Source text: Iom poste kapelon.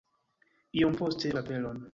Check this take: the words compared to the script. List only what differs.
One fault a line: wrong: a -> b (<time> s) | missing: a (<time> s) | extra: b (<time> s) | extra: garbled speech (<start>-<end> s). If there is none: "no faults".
no faults